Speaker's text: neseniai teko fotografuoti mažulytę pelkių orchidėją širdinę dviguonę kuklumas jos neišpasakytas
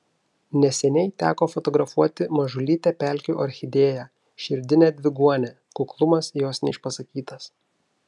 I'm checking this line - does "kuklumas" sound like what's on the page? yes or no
yes